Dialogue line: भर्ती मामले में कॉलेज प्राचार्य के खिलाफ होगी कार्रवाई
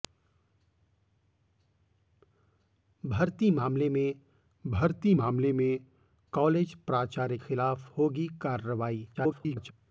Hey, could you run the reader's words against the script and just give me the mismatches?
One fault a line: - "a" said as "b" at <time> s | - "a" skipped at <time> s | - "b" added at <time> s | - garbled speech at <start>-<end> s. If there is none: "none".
- "भर्ती मामले में" added at 4.6 s
- "के" skipped at 7.4 s
- garbled speech at 9.1-9.7 s